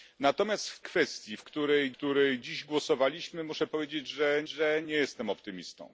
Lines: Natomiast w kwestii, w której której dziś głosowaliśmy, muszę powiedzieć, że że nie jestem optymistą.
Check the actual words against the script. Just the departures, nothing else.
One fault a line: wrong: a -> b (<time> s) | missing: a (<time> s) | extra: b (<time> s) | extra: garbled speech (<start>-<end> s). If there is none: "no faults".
no faults